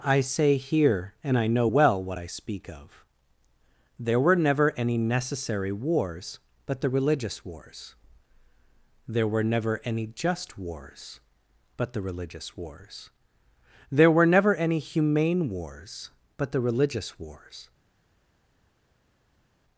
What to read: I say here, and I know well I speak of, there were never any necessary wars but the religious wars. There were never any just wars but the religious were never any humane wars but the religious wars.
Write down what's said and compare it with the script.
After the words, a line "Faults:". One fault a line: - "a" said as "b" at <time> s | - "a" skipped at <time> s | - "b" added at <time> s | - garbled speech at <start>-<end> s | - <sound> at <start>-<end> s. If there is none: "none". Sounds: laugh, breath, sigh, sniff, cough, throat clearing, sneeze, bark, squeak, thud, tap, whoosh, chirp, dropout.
I say here, and I know well what I speak of, there were never any necessary wars but the religious wars. There were never any just wars but the religious wars. There were never any humane wars but the religious wars.
Faults:
- "what" added at 2.0 s
- "wars There" added at 12.6 s